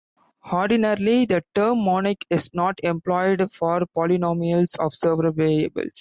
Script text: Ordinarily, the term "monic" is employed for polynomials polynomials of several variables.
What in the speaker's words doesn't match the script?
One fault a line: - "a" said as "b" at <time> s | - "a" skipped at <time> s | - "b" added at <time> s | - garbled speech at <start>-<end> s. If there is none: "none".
- "not" added at 2.5 s
- "polynomials" skipped at 4.8 s